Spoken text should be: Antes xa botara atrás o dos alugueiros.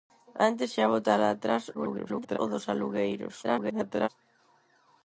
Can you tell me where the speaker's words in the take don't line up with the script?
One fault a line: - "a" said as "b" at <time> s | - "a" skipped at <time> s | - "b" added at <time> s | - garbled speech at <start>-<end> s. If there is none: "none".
- garbled speech at 1.7-2.4 s
- garbled speech at 3.4-4.1 s